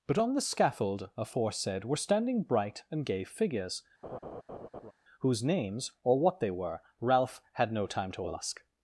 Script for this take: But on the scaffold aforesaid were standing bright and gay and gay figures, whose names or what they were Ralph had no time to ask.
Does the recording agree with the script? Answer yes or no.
no